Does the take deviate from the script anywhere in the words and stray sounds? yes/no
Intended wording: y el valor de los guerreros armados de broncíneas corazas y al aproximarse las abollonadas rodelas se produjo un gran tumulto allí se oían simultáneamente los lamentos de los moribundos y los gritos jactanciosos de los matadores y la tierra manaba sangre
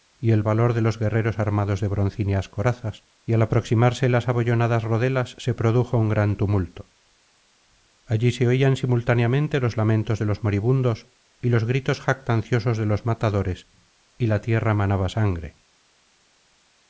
no